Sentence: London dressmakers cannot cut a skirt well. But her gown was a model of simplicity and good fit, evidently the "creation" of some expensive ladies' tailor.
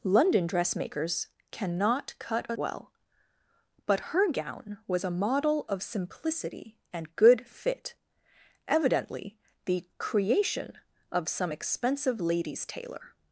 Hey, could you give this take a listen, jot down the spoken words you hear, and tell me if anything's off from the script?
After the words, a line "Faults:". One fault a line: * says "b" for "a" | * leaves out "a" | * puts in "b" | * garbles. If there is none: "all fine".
London dressmakers cannot cut a well. But her gown was a model of simplicity and good fit, evidently the "creation" of some expensive ladies' tailor.
Faults:
* leaves out "skirt"